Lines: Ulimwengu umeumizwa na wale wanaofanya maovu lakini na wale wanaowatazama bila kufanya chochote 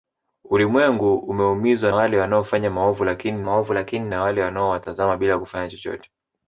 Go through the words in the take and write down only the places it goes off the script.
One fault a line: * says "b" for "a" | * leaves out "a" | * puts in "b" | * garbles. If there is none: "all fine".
* leaves out "na"
* puts in "maovu lakini"